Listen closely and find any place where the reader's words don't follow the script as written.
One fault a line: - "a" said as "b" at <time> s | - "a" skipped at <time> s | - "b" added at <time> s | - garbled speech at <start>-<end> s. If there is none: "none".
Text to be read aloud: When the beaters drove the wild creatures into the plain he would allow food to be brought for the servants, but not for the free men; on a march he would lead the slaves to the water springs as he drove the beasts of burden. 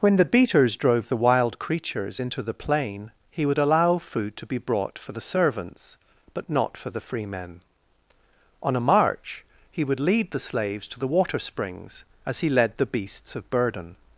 - "drove" said as "led" at 12.5 s